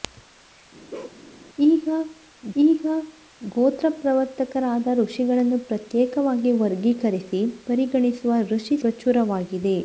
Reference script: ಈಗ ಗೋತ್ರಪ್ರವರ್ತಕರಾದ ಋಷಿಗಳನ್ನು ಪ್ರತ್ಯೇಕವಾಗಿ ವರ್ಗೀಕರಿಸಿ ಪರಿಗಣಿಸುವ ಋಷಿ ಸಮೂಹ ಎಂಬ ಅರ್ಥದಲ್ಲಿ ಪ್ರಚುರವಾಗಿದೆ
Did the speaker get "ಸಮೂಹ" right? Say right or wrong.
wrong